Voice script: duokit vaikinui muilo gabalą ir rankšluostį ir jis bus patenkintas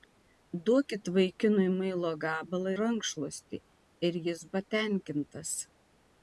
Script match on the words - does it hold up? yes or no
no